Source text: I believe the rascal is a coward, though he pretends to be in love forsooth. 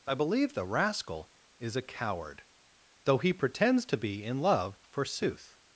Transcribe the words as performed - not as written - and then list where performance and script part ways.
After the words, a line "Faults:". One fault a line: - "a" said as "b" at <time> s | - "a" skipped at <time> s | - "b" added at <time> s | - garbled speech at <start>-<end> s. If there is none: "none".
I believe the rascal is a coward, though he pretends to be in love forsooth.
Faults:
none